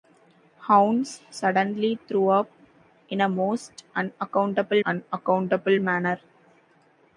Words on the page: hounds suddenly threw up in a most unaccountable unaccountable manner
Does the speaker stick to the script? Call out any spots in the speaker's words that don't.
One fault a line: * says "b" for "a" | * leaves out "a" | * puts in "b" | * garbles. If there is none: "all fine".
all fine